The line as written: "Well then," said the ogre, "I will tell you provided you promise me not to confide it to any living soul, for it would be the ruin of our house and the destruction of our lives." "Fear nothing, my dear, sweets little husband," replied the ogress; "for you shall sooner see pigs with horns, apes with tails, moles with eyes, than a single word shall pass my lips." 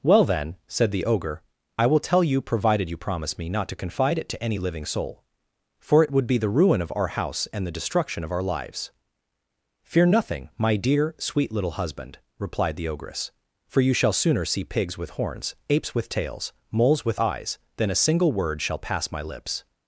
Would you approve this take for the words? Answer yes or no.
no